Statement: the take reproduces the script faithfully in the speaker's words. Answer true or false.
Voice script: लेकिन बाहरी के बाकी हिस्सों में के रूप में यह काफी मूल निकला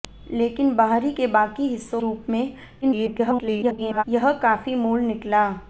false